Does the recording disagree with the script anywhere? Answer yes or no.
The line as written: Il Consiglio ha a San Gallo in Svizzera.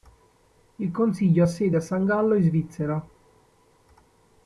yes